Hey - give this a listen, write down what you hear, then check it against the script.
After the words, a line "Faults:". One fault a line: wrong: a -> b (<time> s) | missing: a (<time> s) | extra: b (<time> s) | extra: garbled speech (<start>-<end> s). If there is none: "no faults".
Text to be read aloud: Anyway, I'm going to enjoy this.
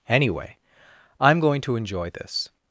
Anyway, I'm going to enjoy this.
Faults:
no faults